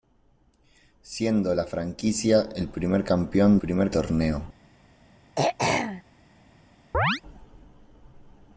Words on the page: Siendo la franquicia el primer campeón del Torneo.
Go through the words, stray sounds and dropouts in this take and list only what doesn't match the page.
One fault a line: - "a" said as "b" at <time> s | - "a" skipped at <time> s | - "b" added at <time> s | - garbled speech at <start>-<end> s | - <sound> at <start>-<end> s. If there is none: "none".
- "del" said as "primer" at 3.6 s
- throat clearing at 5.4-6.0 s
- chirp at 6.9-7.2 s